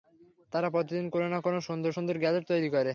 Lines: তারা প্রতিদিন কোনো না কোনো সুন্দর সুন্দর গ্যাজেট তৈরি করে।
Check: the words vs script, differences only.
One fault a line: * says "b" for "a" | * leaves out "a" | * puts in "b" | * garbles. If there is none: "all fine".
all fine